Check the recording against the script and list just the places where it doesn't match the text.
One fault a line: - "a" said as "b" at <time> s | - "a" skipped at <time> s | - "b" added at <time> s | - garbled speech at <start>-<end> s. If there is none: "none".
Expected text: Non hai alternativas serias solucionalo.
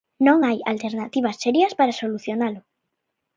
- "para" added at 1.8 s